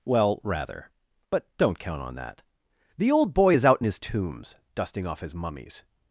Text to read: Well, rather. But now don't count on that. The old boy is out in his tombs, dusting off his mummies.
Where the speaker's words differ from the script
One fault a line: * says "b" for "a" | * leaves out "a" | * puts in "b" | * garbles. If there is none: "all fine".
* leaves out "now"